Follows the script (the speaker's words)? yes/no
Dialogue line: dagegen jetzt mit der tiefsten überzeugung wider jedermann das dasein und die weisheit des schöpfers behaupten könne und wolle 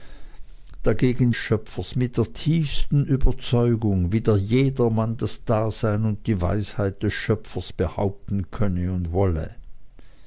no